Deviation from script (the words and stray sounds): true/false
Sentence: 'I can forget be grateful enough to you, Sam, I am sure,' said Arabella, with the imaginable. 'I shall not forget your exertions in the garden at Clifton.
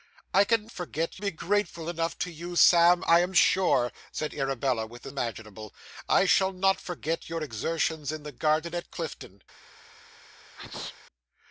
true